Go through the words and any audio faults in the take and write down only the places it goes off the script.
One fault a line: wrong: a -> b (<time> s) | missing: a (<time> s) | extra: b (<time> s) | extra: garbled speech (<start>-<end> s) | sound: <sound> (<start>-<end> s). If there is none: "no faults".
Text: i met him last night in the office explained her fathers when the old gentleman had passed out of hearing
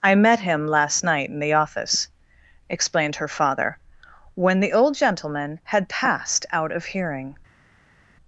wrong: fathers -> father (3.3 s)